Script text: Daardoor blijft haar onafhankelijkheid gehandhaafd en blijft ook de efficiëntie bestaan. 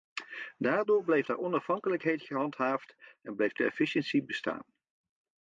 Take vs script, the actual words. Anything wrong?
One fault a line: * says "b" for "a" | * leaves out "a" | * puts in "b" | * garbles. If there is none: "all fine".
* leaves out "ook"